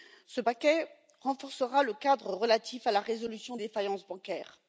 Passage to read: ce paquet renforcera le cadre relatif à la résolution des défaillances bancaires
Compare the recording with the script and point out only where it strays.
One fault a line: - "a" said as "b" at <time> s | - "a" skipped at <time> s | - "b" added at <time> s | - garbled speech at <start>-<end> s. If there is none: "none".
- "des" skipped at 3.6 s